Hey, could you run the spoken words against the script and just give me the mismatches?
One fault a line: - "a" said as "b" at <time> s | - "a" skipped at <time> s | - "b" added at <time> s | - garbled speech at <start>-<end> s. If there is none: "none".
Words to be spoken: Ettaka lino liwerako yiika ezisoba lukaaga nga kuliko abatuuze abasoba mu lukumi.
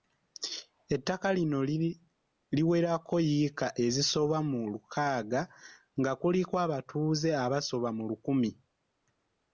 - "mu" added at 4.5 s